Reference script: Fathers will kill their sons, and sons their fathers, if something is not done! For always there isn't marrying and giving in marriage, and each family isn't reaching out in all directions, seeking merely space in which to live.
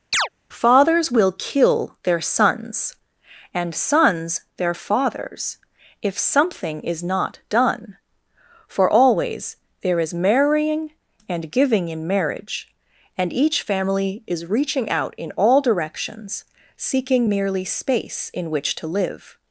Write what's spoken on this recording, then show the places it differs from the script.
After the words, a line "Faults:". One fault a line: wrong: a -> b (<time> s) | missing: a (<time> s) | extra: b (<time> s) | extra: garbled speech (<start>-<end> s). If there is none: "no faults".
Fathers will kill their sons, and sons their fathers, if something is not done! For always there is marrying and giving in marriage, and each family is reaching out in all directions, seeking merely space in which to live.
Faults:
wrong: isn't -> is (10.0 s)
wrong: isn't -> is (14.3 s)